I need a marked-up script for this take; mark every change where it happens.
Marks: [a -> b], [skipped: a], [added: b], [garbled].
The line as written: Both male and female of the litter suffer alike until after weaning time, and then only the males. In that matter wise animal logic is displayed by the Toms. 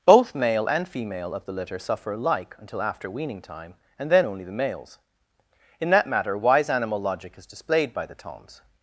Both male and female of the litter suffer alike until after weaning time, and then only the males. In that matter wise animal logic is displayed by the Toms.